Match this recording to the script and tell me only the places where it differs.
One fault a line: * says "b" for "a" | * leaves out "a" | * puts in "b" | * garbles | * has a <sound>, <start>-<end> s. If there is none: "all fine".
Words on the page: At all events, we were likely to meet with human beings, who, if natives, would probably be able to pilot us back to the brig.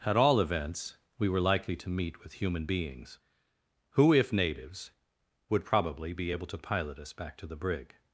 all fine